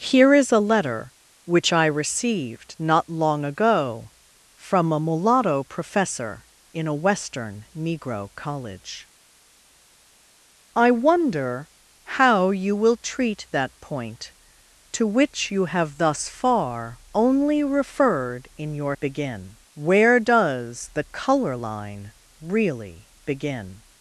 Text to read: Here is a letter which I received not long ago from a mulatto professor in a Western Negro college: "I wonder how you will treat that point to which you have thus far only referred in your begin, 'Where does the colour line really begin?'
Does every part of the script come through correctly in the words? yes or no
yes